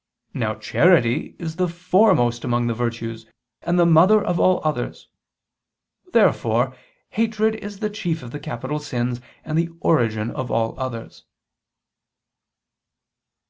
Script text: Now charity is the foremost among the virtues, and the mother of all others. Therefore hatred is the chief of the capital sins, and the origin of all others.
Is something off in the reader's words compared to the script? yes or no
no